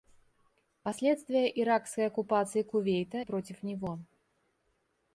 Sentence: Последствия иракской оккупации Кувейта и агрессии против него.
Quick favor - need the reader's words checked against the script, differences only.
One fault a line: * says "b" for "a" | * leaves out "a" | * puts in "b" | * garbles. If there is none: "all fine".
* leaves out "и агрессии"